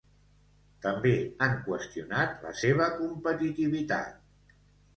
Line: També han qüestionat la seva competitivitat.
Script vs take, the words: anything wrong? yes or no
no